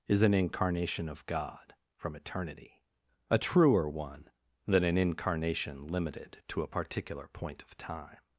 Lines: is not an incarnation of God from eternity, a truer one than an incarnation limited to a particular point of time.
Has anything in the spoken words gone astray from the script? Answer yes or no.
yes